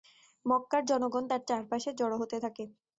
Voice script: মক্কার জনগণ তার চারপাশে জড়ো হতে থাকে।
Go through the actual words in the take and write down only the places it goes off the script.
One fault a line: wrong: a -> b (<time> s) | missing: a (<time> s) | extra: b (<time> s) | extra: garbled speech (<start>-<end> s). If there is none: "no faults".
no faults